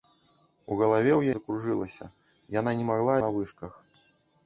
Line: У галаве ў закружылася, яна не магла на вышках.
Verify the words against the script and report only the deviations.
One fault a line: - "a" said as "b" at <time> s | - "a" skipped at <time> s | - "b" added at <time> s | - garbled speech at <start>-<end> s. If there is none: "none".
none